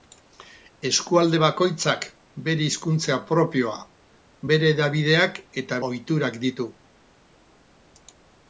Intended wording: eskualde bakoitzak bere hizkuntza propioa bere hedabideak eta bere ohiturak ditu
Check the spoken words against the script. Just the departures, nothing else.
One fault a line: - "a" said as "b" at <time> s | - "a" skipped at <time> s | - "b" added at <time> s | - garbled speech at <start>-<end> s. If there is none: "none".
- "bere" skipped at 5.8 s